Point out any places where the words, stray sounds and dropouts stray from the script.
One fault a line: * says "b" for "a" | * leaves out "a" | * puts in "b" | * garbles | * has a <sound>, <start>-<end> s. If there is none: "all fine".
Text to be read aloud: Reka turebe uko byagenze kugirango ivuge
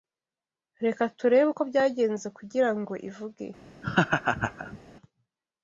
* has a laugh, 3.8-4.8 s